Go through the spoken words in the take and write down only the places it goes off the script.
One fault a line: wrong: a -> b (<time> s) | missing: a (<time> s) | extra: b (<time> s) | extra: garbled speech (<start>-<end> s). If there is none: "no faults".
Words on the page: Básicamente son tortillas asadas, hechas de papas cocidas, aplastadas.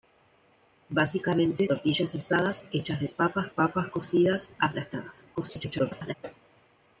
missing: son (1.7 s)
extra: papas (3.5 s)
extra: garbled speech (5.3-6.1 s)